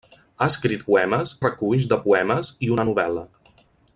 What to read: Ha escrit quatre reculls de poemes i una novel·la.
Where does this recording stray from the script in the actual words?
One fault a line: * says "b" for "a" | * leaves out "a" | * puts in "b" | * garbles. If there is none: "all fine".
* says "poemes" for "quatre"